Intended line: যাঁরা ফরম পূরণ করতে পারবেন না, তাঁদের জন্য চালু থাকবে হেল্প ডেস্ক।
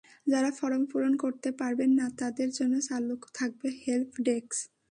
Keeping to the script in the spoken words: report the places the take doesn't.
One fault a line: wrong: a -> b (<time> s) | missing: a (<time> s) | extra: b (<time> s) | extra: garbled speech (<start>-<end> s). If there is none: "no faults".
no faults